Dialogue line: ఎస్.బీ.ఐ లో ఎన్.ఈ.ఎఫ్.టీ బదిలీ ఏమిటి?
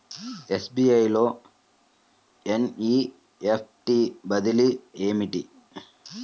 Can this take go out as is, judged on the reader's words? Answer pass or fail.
pass